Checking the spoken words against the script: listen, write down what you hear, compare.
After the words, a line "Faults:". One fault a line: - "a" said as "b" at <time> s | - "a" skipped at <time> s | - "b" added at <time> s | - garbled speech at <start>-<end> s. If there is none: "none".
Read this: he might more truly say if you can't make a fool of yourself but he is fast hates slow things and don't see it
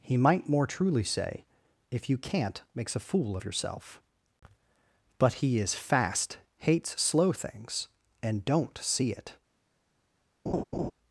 he might more truly say if you can't makes a fool of yourself but he is fast hates slow things and don't see it
Faults:
- "make" said as "makes" at 2.7 s